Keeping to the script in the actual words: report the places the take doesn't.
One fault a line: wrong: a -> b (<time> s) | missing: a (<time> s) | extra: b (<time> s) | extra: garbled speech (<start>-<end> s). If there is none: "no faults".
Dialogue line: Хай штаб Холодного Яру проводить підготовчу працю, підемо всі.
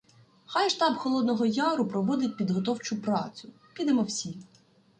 no faults